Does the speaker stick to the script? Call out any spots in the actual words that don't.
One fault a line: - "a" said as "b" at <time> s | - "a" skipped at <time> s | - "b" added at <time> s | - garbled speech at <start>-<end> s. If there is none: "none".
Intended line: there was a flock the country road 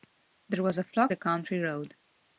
none